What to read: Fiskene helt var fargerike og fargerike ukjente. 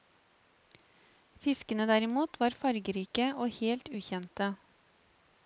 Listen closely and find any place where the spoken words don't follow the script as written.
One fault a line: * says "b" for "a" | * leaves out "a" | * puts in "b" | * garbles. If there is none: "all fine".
* says "derimot" for "helt"
* says "helt" for "fargerike"